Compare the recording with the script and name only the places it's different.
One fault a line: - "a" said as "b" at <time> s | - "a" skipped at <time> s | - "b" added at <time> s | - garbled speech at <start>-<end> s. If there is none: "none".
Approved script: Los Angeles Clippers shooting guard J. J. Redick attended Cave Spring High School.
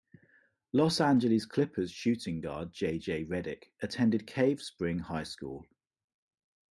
none